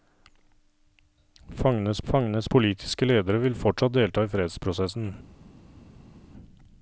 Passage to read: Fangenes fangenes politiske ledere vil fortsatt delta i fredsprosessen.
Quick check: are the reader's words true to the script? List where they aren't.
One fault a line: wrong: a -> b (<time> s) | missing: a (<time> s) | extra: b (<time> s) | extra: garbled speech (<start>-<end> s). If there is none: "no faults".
no faults